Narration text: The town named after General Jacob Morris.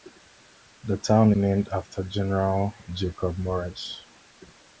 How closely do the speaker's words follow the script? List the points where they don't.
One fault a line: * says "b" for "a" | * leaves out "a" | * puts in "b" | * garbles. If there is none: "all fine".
all fine